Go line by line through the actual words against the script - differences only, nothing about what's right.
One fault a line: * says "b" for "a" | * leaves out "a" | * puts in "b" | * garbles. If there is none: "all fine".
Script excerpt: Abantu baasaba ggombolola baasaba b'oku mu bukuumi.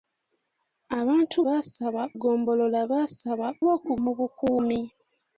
all fine